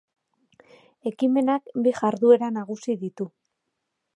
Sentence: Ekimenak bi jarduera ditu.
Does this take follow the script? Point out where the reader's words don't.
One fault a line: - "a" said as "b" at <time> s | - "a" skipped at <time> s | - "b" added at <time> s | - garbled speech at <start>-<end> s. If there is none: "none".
- "nagusi" added at 2.6 s